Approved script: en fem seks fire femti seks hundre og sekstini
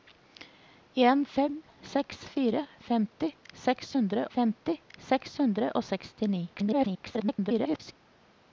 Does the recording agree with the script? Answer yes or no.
no